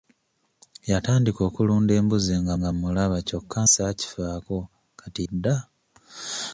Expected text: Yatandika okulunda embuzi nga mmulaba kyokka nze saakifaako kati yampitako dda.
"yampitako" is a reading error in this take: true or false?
true